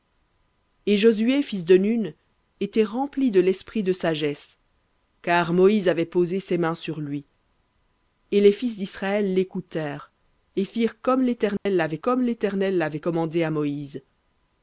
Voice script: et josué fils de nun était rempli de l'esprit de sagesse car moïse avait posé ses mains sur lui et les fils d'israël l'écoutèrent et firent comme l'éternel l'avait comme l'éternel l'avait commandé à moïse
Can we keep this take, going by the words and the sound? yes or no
no